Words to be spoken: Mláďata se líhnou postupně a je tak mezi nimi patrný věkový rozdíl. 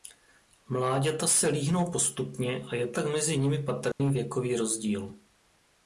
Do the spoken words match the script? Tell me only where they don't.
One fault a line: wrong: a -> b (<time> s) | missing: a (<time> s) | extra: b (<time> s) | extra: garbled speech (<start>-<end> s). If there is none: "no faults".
no faults